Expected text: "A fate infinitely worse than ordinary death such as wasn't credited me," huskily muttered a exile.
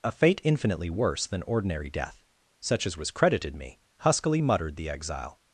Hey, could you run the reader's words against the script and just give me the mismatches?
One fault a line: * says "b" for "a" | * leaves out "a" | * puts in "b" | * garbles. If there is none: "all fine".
* says "was" for "wasn't"
* says "the" for "a"